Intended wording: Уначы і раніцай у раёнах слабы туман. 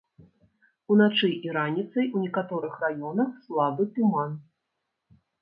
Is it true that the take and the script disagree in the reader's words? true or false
true